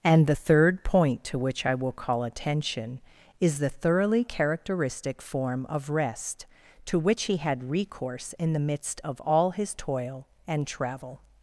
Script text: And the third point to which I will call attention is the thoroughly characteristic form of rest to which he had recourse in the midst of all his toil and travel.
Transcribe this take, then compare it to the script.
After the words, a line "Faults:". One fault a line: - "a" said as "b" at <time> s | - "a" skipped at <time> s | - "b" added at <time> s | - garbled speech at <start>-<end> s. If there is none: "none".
And the third point to which I will call attention is the thoroughly characteristic form of rest to which he had recourse in the midst of all his toil and travel.
Faults:
none